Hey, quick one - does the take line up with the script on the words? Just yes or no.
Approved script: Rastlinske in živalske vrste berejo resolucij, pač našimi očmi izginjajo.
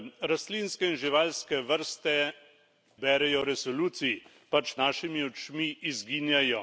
yes